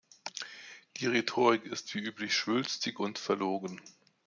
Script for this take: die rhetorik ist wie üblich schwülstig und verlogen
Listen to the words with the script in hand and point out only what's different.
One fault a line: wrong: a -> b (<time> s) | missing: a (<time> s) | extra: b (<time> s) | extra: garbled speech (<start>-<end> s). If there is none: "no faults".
no faults